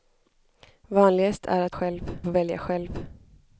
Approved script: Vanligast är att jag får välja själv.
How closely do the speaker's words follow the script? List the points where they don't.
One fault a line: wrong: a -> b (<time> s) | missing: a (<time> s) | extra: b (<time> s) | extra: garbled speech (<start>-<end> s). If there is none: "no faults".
wrong: jag -> själv (1.7 s)